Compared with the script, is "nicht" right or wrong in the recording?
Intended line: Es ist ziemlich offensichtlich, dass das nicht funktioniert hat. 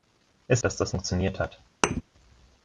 wrong